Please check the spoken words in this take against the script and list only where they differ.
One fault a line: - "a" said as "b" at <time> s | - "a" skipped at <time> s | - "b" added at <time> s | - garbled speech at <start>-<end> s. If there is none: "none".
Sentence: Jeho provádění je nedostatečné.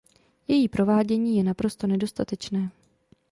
- "Jeho" said as "Její" at 0.5 s
- "naprosto" added at 1.4 s